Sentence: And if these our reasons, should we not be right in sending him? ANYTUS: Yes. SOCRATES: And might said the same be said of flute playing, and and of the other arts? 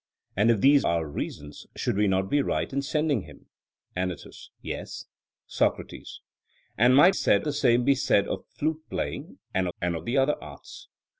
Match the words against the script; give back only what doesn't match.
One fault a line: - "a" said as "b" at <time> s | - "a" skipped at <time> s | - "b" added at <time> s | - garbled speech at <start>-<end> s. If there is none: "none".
none